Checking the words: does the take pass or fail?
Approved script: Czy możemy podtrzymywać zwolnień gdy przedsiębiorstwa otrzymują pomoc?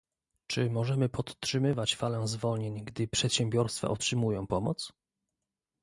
fail